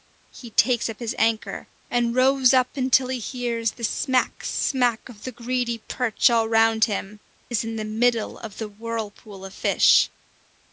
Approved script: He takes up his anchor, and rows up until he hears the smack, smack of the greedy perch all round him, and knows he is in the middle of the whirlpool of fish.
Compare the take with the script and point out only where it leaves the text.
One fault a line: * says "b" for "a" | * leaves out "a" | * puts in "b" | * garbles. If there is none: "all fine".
* leaves out "and knows he"